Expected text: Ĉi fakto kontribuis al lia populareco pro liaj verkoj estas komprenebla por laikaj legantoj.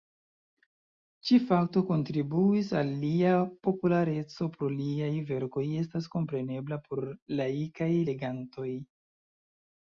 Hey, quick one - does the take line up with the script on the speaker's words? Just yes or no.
yes